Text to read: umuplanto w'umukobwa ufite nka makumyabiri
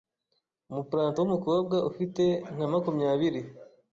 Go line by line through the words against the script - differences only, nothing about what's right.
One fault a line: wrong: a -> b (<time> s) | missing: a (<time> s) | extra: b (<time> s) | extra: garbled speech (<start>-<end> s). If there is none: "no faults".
no faults